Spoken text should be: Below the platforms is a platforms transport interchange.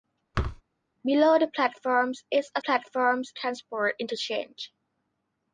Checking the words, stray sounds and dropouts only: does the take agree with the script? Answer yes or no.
no